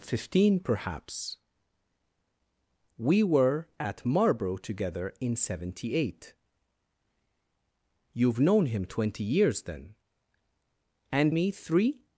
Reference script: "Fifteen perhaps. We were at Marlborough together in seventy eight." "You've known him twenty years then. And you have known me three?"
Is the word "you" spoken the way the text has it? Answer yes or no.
no